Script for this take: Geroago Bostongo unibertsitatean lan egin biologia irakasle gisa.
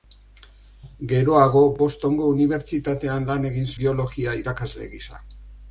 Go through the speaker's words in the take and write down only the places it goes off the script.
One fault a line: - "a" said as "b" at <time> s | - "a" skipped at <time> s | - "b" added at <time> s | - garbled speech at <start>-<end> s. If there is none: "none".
none